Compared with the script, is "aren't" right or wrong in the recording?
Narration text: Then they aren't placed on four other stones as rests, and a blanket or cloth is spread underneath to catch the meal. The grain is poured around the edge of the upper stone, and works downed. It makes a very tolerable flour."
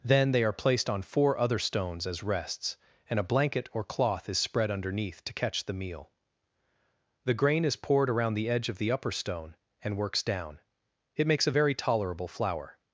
wrong